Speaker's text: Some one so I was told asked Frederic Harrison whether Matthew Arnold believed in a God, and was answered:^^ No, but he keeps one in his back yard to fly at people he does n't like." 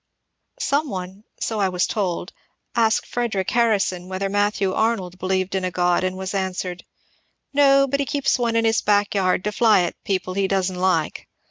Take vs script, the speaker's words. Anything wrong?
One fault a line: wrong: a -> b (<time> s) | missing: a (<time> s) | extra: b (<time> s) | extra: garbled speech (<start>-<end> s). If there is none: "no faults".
no faults